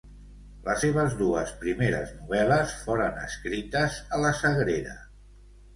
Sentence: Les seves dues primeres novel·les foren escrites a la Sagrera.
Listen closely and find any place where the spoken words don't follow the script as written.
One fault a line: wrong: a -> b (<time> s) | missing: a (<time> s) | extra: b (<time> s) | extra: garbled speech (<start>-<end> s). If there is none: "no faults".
no faults